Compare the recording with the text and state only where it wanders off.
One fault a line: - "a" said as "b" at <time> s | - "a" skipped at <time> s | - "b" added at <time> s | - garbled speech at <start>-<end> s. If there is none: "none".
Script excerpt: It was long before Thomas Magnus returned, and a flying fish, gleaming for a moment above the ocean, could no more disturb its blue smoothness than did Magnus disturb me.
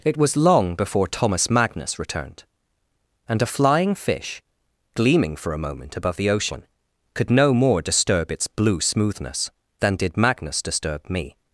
none